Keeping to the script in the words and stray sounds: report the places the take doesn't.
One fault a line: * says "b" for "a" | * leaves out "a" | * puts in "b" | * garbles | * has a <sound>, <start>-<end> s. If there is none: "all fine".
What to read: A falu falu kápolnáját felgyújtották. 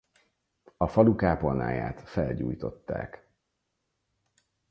* leaves out "falu"